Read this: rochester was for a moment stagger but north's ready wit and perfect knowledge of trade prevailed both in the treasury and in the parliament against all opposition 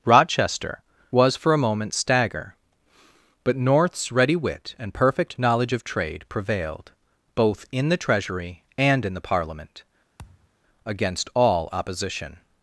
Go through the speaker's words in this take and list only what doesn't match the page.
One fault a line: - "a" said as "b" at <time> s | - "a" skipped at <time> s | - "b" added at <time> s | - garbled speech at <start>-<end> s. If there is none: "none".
none